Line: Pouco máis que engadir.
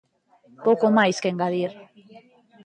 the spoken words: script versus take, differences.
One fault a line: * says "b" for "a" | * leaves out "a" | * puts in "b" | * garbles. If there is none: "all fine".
all fine